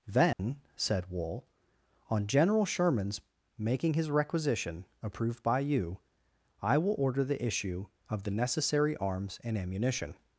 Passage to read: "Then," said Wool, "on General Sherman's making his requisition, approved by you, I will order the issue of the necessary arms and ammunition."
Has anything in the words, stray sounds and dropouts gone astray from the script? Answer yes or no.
yes